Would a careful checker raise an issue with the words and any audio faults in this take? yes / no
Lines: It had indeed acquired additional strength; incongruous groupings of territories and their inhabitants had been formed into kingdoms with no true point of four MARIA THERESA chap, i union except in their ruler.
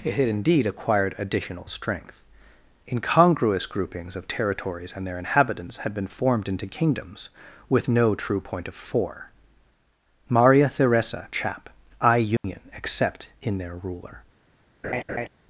yes